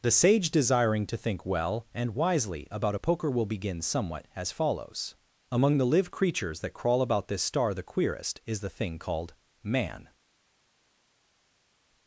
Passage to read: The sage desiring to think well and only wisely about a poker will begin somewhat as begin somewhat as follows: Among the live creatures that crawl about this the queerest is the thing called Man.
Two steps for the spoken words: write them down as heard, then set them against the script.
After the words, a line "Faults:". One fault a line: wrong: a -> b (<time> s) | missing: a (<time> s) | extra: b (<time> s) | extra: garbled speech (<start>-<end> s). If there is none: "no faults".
The sage desiring to think well and wisely about a poker will begin somewhat as follows: Among the live creatures that crawl about this star the queerest is the thing called Man.
Faults:
missing: only (2.1 s)
missing: begin somewhat as (4.5 s)
extra: star (7.4 s)